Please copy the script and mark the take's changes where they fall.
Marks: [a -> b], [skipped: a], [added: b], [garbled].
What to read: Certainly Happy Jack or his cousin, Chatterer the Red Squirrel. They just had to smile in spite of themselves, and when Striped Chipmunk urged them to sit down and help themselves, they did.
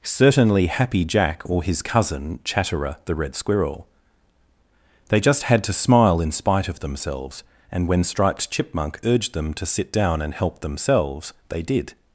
Certainly Happy Jack or his cousin, Chatterer the Red Squirrel. They just had to smile in spite of themselves, and when Striped Chipmunk urged them to sit down and help themselves, they did.